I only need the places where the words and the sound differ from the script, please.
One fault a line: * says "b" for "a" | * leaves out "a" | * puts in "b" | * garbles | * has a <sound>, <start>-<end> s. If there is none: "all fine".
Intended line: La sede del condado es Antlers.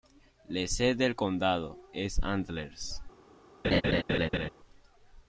* has a laugh, 3.6-4.5 s